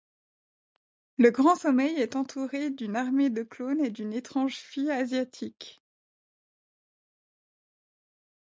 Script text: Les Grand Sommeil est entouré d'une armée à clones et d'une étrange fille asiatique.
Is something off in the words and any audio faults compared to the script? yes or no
yes